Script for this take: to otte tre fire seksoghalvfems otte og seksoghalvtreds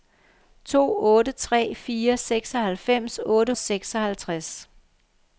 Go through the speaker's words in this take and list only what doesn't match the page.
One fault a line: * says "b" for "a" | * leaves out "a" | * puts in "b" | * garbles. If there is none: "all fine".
all fine